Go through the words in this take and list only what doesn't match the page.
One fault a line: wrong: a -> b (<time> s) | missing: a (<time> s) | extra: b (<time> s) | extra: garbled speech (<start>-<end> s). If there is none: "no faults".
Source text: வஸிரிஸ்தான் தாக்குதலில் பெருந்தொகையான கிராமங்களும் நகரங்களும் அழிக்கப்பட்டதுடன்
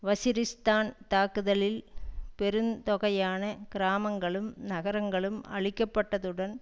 no faults